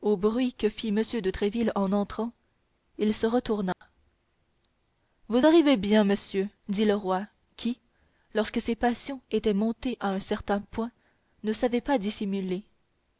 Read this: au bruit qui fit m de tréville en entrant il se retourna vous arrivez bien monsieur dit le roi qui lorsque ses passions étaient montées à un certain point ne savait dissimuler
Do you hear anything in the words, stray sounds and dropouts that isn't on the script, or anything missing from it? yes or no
yes